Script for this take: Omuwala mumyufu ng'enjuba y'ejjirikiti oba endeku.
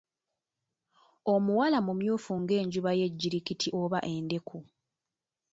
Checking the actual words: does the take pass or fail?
pass